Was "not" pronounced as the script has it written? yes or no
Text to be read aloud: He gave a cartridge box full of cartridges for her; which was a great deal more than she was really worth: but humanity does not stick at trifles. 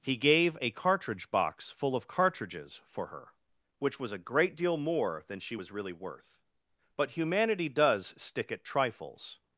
no